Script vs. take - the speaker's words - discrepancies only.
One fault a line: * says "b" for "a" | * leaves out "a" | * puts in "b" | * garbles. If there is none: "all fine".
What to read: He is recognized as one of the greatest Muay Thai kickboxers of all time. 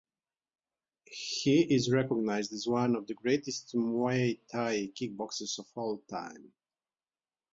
all fine